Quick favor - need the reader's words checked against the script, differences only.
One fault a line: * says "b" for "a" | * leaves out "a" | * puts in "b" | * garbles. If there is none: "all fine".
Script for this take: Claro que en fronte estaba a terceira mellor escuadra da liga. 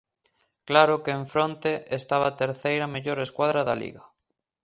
all fine